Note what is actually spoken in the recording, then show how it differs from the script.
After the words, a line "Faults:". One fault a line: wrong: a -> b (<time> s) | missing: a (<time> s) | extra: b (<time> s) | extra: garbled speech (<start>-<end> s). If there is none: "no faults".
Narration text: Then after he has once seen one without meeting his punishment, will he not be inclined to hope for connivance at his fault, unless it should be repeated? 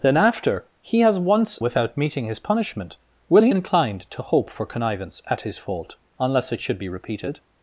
Then after he has once without meeting his punishment, will he inclined to hope for connivance at his fault, unless it should be repeated?
Faults:
missing: seen one (1.6 s)
missing: not be (3.5 s)